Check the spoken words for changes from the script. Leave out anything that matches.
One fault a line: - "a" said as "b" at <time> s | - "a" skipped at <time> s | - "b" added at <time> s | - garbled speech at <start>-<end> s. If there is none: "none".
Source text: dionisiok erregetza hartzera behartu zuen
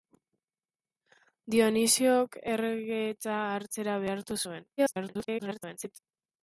- garbled speech at 4.8-6.0 s